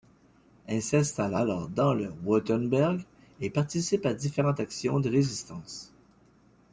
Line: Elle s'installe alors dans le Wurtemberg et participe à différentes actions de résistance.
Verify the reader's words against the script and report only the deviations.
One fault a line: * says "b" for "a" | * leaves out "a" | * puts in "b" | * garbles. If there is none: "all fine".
all fine